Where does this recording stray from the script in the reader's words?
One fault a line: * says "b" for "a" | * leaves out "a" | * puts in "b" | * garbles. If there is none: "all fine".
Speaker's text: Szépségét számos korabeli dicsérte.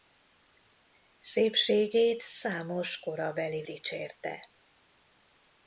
all fine